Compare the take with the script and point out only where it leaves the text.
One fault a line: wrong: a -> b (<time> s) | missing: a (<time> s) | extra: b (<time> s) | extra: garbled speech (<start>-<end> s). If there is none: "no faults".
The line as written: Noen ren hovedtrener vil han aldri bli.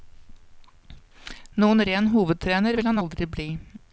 no faults